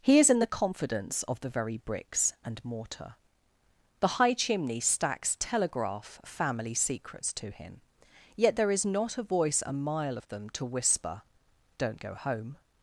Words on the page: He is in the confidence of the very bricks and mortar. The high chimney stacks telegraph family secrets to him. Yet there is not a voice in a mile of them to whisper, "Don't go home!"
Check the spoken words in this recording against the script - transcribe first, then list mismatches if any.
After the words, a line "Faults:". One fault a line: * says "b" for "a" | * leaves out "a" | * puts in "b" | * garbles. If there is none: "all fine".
He is in the confidence of the very bricks and mortar. The high chimney stacks telegraph family secrets to him. Yet there is not a voice a mile of them to whisper, "Don't go home!"
Faults:
* leaves out "in"